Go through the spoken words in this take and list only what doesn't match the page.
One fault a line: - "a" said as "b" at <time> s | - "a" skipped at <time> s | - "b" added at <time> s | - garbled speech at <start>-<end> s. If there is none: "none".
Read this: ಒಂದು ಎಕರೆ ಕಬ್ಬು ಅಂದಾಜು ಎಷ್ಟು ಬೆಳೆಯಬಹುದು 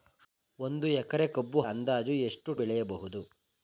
none